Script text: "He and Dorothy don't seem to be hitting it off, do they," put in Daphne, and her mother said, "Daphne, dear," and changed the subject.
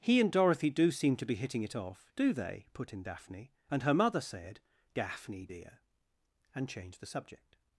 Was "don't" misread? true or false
true